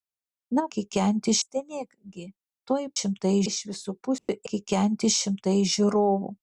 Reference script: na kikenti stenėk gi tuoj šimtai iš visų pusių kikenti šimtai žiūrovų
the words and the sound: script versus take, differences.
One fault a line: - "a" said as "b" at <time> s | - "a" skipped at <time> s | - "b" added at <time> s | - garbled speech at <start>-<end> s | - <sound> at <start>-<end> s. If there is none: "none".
- dropout at 4.2-4.3 s